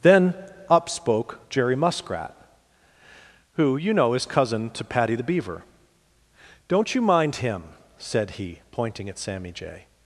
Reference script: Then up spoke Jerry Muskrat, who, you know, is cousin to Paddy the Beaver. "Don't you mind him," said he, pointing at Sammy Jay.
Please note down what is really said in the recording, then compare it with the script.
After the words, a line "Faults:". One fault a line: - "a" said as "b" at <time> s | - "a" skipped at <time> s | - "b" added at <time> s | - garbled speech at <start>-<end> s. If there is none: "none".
Then up spoke Jerry Muskrat, who, you know, is cousin to Paddy the Beaver. "Don't you mind him," said he, pointing at Sammy Jay.
Faults:
none